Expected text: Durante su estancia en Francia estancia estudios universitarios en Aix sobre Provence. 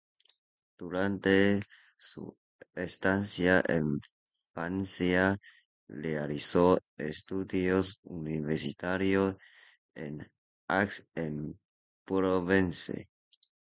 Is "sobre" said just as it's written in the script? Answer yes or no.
no